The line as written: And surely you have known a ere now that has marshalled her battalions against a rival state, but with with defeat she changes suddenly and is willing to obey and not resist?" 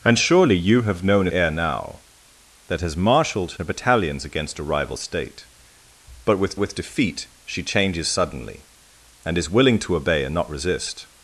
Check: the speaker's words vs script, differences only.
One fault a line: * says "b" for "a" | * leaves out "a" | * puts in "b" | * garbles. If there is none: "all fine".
all fine